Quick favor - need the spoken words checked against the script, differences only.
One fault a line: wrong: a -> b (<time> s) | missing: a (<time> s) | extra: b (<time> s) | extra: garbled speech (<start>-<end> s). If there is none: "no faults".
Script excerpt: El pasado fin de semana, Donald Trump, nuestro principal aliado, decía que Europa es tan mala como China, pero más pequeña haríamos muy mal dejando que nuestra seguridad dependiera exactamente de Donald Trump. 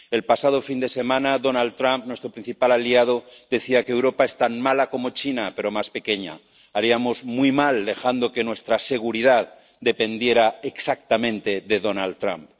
no faults